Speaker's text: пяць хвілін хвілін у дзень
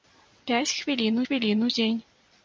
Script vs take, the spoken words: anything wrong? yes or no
no